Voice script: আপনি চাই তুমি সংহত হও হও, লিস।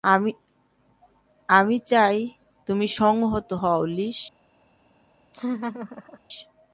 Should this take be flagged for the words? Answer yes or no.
yes